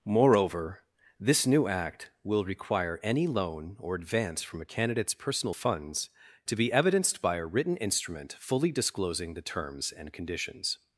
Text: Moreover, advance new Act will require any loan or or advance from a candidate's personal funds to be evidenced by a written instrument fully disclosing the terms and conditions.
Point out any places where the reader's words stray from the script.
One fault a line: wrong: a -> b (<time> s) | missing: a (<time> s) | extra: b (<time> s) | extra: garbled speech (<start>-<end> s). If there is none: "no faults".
wrong: advance -> this (1.2 s)
missing: or (3.9 s)